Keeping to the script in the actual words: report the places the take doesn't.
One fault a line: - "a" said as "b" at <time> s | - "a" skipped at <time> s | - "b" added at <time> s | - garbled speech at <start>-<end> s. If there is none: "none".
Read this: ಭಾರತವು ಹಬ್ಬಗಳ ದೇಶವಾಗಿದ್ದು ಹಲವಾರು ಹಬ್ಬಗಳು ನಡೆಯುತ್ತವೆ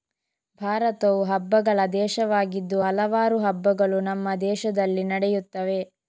- "ನಮ್ಮ ದೇಶದಲ್ಲಿ" added at 4.0 s